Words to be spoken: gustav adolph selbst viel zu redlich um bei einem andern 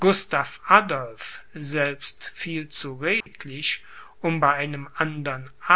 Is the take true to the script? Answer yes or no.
yes